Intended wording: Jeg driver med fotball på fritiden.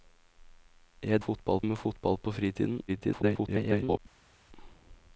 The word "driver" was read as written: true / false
false